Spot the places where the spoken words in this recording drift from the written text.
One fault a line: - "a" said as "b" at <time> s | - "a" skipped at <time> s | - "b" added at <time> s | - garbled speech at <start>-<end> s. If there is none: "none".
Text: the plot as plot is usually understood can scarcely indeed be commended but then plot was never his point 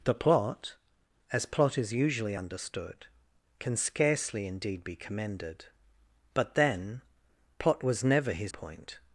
none